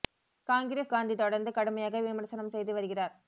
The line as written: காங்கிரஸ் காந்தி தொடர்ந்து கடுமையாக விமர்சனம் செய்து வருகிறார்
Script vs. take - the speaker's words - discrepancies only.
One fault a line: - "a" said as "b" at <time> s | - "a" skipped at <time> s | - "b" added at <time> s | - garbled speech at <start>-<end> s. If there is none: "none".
none